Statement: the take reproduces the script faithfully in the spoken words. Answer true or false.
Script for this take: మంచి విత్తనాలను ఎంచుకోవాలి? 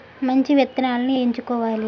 true